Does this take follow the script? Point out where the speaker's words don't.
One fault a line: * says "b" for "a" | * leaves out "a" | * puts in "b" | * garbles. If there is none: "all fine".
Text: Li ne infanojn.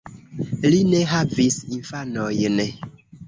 * puts in "havis"